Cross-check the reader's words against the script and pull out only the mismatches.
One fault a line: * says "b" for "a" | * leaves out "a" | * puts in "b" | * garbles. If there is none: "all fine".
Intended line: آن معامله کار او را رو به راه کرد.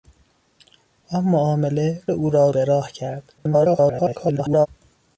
* leaves out "کار"
* leaves out "رو"
* garbles